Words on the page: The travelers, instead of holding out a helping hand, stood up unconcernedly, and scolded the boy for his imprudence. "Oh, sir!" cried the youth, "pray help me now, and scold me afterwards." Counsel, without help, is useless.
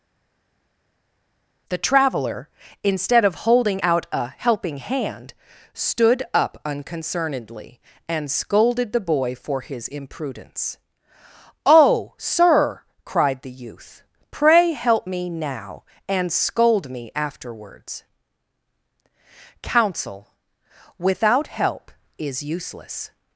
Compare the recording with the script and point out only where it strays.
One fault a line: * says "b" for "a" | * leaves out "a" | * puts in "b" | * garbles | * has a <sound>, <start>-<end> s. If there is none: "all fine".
* says "traveler" for "travelers"